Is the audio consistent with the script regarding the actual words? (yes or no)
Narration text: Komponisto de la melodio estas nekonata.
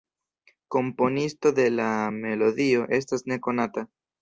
yes